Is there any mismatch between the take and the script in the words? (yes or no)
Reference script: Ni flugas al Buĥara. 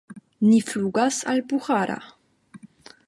no